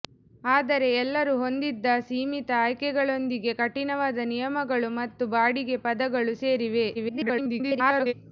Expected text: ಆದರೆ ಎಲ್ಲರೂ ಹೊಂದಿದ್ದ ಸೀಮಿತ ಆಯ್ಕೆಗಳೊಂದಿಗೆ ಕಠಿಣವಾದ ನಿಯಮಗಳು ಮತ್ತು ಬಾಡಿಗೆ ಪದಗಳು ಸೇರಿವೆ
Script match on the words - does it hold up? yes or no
no